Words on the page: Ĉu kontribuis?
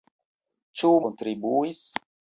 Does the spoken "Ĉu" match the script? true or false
true